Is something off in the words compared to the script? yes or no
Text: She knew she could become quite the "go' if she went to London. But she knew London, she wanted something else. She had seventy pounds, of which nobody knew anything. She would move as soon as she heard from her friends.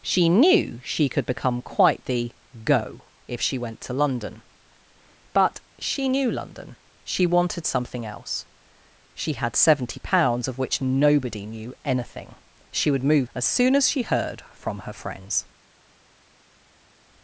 no